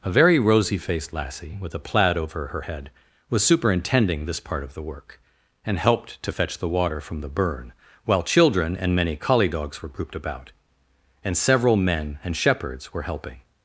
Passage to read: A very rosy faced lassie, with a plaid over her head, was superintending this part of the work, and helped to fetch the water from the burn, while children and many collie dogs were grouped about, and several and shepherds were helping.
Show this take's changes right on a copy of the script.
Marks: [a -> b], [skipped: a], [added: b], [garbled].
A very rosy faced lassie, with a plaid over her head, was superintending this part of the work, and helped to fetch the water from the burn, while children and many collie dogs were grouped about, and several [added: men] and shepherds were helping.